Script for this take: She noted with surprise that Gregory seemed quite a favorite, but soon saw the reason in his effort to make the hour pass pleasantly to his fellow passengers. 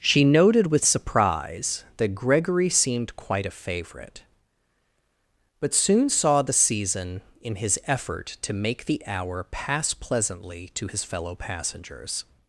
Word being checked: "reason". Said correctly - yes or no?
no